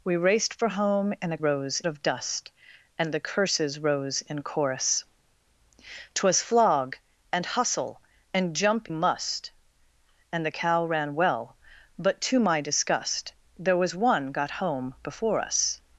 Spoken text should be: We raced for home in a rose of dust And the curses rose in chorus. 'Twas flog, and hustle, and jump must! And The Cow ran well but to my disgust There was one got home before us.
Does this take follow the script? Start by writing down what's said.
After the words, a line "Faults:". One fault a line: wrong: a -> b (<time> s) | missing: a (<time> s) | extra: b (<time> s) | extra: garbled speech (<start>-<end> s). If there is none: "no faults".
We raced for home in a rose of dust And the curses rose in chorus. 'Twas flog, and hustle, and jump must! And The Cow ran well but to my disgust There was one got home before us.
Faults:
no faults